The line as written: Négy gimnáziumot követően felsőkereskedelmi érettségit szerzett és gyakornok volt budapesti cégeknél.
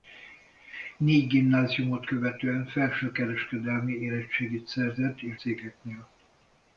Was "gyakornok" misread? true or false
true